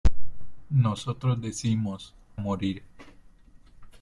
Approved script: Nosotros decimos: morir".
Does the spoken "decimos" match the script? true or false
true